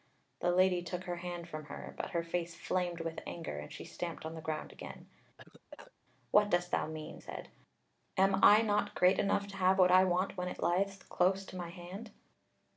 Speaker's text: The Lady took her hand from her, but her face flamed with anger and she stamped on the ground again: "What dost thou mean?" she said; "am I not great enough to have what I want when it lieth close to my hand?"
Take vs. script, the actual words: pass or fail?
fail